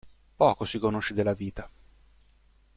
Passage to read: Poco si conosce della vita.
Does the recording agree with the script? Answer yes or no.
yes